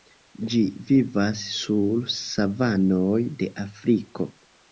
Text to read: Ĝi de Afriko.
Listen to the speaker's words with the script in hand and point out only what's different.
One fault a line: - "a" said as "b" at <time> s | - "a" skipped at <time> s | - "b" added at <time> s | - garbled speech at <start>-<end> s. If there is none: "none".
- "vivas sur savanoj" added at 0.9 s